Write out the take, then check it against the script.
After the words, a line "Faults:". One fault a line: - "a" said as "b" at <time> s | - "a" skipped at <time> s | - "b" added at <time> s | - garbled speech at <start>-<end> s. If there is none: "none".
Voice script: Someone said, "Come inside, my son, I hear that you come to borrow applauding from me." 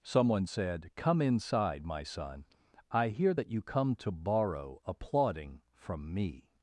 Someone said, "Come inside, my son, I hear that you come to borrow applauding from me."
Faults:
none